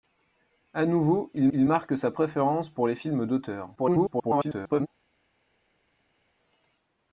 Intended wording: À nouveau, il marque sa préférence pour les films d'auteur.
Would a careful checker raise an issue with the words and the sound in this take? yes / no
yes